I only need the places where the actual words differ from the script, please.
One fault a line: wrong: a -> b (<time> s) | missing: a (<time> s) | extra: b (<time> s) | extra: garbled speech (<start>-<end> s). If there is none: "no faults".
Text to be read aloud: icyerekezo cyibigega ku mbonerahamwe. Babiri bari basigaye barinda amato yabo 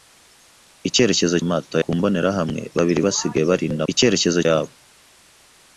wrong: cyibigega -> amato (1.4 s)
missing: bari (3.0 s)
wrong: amato -> icyerekezo (3.9 s)